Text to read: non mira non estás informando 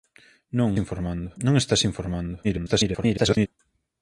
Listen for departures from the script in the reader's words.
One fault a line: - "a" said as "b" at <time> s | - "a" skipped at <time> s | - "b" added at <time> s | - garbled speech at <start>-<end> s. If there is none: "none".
- "mira" said as "informando" at 0.8 s
- garbled speech at 2.4-3.5 s